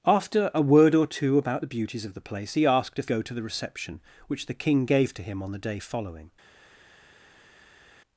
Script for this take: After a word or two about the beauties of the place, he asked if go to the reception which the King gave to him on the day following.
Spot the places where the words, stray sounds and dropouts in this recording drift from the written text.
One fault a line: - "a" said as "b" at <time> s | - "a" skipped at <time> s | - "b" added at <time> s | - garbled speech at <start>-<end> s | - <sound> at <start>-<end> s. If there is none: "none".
none